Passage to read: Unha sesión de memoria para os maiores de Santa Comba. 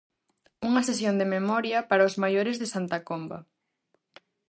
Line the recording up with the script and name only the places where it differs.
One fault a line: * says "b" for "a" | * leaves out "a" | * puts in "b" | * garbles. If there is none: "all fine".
all fine